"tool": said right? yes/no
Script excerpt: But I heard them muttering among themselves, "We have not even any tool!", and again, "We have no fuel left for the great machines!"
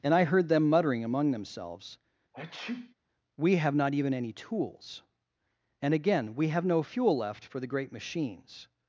no